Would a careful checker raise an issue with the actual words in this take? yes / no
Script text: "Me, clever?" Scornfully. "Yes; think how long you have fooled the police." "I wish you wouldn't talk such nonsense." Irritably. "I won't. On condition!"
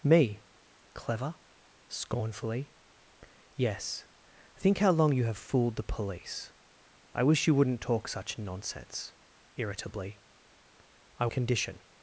yes